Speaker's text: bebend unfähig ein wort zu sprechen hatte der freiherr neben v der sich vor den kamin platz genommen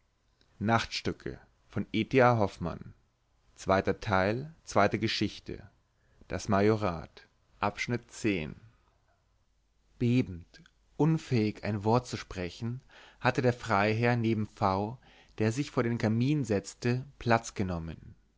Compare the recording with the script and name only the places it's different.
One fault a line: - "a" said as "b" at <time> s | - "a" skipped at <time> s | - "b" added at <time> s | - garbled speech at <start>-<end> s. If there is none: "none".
- "setzte" added at 16.4 s